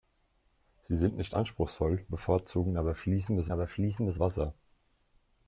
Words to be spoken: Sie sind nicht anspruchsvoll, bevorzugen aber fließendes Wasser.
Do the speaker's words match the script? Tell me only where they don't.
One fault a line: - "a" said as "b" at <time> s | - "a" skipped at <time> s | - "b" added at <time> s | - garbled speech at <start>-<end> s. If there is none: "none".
- "aber fließendes" added at 3.5 s